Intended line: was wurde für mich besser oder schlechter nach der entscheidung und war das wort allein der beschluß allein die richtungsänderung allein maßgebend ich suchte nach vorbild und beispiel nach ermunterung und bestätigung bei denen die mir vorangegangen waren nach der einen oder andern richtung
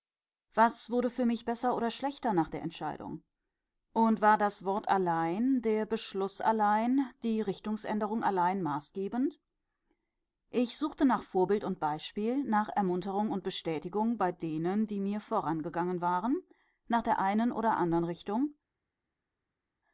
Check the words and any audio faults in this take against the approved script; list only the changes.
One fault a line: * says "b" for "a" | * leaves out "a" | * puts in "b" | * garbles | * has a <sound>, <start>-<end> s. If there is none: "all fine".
all fine